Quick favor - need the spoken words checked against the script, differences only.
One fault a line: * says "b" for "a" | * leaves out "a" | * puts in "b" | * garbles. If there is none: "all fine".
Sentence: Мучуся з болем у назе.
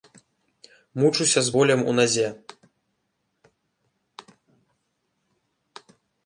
all fine